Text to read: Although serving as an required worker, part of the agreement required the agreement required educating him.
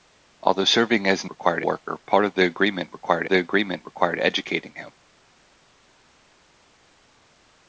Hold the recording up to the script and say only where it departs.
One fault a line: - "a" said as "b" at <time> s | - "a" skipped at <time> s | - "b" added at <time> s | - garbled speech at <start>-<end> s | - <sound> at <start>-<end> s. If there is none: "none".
none